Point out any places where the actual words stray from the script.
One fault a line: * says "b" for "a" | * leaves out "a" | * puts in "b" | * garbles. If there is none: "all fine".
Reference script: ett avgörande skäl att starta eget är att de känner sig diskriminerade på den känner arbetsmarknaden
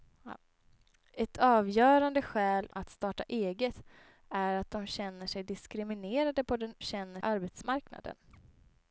all fine